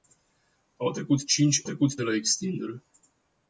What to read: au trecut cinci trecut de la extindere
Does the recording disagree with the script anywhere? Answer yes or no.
no